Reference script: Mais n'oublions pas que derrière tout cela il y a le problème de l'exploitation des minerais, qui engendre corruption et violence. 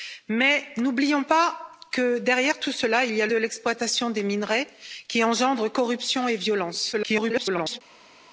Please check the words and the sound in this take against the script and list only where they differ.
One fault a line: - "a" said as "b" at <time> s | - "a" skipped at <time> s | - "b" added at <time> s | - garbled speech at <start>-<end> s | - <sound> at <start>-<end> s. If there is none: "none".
- "le problème" skipped at 3.3 s
- garbled speech at 6.9-7.8 s